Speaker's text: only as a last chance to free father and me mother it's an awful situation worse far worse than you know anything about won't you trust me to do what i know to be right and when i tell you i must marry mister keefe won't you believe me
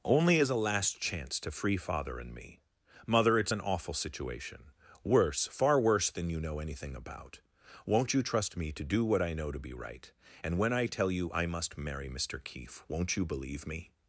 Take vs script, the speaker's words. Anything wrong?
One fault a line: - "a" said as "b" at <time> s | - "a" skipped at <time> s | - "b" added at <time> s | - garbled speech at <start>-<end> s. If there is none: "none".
none